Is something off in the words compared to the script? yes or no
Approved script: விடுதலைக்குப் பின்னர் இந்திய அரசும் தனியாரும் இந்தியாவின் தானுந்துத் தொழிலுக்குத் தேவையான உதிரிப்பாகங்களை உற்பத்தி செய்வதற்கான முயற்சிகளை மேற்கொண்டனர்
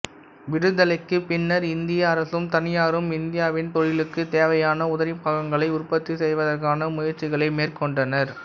yes